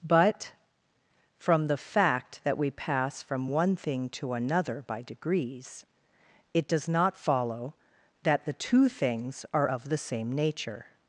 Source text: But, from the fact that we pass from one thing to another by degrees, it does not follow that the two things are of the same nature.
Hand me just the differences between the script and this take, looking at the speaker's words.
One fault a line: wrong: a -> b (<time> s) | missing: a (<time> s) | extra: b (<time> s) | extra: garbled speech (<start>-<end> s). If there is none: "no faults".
no faults